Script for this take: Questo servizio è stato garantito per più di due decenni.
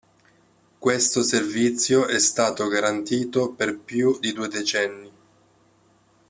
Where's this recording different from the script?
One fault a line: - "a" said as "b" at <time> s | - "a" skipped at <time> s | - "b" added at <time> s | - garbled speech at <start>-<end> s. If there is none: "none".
none